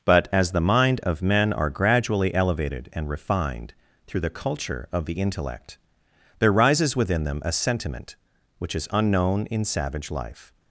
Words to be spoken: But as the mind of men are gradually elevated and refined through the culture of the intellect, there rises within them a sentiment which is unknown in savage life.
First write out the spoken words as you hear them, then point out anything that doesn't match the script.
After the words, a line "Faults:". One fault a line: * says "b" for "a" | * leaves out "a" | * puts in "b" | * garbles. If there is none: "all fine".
But as the mind of men are gradually elevated and refined through the culture of the intellect, there rises within them a sentiment which is unknown in savage life.
Faults:
all fine